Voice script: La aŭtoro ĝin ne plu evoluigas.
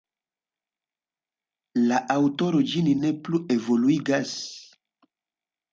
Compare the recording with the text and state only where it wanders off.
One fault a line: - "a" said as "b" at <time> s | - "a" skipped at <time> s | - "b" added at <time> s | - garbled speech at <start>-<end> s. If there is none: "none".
none